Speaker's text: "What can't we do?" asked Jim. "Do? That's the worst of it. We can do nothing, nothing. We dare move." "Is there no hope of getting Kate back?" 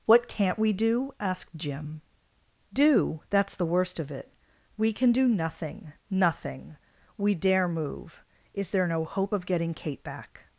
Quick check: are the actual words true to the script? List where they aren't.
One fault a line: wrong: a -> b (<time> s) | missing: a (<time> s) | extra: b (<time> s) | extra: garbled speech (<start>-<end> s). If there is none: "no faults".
no faults